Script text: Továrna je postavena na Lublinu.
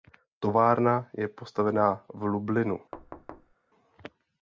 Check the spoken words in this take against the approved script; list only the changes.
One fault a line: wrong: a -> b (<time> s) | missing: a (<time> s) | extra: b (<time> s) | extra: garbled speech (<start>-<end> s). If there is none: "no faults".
wrong: na -> v (2.1 s)